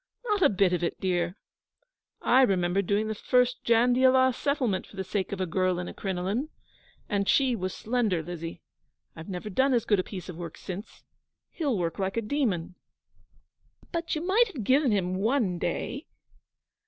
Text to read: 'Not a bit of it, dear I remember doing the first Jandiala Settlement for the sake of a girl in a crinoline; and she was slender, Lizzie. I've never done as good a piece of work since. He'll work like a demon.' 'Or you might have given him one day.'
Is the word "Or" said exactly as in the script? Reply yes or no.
no